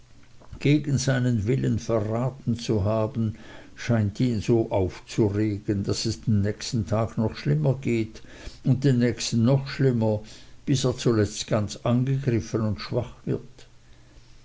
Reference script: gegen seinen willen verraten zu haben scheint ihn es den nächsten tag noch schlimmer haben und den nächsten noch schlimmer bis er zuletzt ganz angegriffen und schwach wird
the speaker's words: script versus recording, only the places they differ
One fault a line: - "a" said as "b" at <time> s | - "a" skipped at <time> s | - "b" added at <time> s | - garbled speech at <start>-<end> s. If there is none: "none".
- "so aufzuregen daß" added at 4.4 s
- "haben" said as "geht" at 7.8 s